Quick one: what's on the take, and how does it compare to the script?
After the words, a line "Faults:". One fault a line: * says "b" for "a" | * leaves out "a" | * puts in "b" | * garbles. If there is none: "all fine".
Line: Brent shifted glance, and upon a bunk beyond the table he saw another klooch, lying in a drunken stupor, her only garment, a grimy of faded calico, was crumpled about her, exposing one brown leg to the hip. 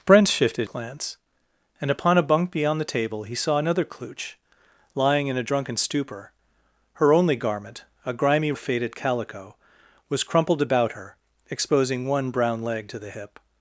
Brent shifted glance, and upon a bunk beyond the table he saw another klooch, lying in a drunken stupor, her only garment, a grimy of faded calico, was crumpled about her, exposing one brown leg to the hip.
Faults:
all fine